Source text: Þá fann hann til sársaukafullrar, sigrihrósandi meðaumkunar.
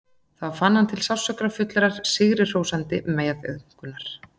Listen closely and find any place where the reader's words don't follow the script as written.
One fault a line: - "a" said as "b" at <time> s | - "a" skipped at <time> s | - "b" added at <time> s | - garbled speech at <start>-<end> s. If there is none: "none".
none